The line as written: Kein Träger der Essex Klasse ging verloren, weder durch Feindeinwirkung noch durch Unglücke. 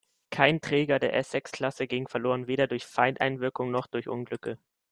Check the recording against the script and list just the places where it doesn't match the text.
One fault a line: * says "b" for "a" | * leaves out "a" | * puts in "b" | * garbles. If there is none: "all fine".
all fine